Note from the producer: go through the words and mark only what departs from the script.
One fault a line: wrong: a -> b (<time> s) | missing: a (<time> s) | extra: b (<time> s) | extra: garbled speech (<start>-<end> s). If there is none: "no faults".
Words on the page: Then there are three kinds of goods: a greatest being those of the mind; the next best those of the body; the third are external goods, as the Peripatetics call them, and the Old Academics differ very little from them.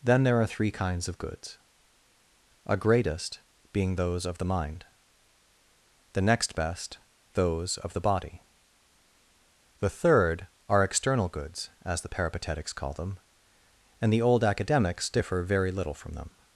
no faults